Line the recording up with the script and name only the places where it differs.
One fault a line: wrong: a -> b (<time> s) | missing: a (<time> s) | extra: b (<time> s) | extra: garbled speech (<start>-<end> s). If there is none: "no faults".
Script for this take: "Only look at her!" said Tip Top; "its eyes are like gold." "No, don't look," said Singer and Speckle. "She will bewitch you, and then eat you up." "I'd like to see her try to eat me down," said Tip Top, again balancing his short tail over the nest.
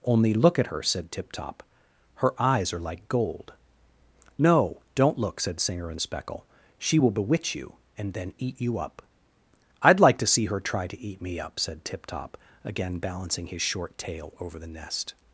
wrong: its -> her (2.1 s)
wrong: down -> up (11.4 s)